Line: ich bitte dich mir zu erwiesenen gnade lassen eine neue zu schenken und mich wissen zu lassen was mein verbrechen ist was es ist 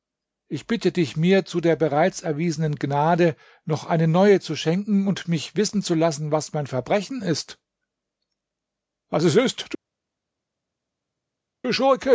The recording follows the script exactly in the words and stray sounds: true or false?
false